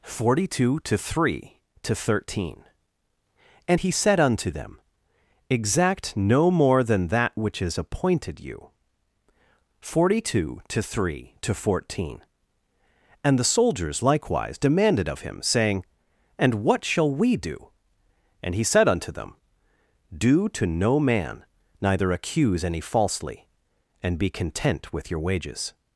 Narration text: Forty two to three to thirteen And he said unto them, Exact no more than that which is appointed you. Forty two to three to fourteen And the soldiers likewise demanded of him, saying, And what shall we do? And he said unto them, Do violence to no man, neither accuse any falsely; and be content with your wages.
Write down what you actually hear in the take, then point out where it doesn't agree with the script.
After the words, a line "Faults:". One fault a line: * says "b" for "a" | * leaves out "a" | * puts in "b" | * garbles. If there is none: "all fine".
Forty two to three to thirteen And he said unto them, Exact no more than that which is appointed you. Forty two to three to fourteen And the soldiers likewise demanded of him, saying, And what shall we do? And he said unto them, Do to no man, neither accuse any falsely; and be content with your wages.
Faults:
* leaves out "violence"